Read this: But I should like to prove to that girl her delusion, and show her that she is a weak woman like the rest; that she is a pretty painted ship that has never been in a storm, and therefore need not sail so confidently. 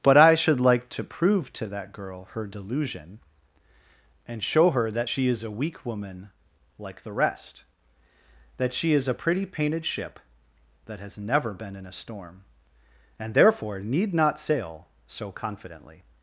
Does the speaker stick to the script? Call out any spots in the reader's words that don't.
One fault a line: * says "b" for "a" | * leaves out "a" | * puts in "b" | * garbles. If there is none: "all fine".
all fine